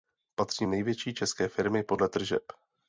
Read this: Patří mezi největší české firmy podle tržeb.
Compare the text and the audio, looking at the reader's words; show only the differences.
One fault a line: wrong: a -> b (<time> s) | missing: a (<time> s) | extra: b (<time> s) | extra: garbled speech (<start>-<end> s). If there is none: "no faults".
missing: mezi (0.7 s)